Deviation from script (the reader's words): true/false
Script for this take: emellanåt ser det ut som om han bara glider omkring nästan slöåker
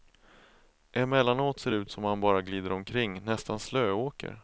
false